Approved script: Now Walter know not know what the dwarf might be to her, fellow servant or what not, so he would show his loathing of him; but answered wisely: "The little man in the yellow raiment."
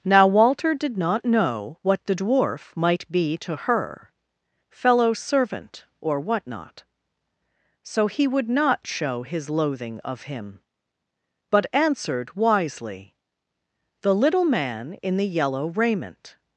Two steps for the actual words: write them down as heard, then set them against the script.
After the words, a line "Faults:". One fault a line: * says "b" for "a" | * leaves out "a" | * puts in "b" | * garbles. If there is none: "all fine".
Now Walter did not know what the dwarf might be to her, fellow servant or what not, so he would not show his loathing of him; but answered wisely: "The little man in the yellow raiment."
Faults:
* says "did" for "know"
* puts in "not"